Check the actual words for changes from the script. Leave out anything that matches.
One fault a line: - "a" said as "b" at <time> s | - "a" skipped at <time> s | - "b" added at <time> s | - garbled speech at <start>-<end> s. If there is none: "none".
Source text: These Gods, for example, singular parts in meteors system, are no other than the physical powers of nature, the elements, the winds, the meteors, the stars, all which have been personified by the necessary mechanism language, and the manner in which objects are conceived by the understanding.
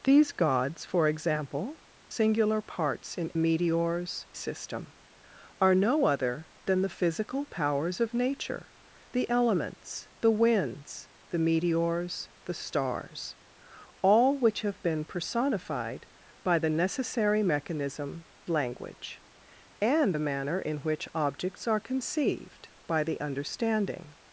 none